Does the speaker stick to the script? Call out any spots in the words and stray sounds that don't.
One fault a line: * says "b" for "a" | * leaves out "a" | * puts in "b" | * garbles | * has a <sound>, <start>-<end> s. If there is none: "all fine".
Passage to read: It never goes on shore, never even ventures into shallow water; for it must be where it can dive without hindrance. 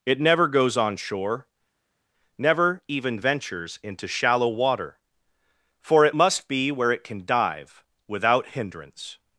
all fine